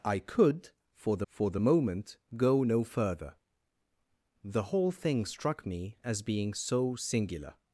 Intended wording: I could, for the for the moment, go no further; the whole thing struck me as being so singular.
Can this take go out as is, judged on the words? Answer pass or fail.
pass